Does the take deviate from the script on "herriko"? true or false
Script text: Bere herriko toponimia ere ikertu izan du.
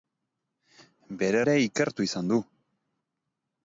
true